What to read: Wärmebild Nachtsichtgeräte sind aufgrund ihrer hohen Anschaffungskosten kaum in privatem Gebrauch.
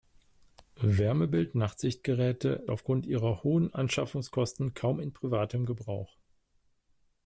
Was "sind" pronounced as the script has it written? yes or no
no